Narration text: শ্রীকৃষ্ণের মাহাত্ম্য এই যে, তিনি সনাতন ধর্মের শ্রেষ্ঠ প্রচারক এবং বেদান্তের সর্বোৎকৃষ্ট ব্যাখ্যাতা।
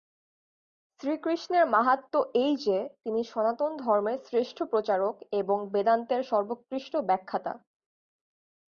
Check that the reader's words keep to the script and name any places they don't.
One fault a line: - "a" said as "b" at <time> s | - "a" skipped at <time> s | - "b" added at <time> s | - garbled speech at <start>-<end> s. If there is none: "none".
none